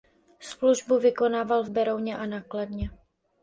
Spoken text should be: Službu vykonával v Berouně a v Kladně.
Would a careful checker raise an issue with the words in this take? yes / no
yes